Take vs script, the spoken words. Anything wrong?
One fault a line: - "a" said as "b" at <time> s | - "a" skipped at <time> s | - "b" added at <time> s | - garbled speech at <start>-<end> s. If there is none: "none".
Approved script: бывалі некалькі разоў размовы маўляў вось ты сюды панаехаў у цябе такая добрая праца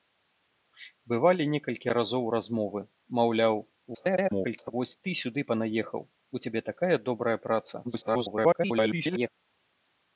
- garbled speech at 3.9-4.7 s
- garbled speech at 7.8-9.3 s